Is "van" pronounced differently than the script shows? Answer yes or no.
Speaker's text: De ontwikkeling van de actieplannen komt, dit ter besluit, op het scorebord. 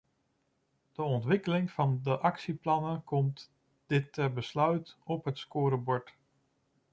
no